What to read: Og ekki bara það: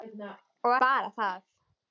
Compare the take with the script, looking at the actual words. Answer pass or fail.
fail